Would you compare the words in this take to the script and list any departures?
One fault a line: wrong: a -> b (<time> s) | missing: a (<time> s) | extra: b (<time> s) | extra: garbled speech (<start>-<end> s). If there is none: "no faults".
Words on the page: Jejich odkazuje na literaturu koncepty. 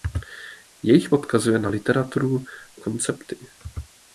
no faults